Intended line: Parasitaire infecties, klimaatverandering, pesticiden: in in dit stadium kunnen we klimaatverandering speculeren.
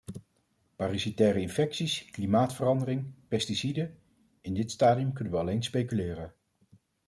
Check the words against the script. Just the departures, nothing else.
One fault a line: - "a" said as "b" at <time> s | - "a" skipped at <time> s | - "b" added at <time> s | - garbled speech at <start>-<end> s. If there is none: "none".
- "in" skipped at 4.5 s
- "klimaatverandering" said as "alleen" at 5.4 s